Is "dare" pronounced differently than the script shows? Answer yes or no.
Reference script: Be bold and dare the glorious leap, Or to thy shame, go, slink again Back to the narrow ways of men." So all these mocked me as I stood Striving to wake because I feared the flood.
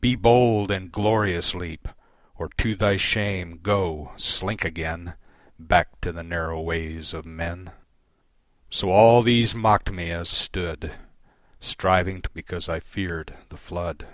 yes